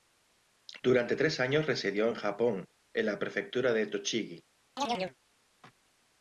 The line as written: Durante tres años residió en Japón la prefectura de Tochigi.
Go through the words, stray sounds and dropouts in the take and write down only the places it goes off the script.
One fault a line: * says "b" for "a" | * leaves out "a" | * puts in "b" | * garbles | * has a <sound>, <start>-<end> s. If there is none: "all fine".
* puts in "en"
* has a chirp, 4.8-5.2 s